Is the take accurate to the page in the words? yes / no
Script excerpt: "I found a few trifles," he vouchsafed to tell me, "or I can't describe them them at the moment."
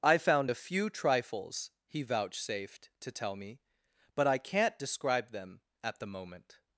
no